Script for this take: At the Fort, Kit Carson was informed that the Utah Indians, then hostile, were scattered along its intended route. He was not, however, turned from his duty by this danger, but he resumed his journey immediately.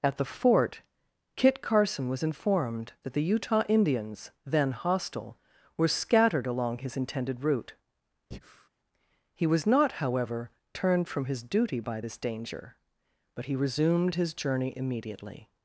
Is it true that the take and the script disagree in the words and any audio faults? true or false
true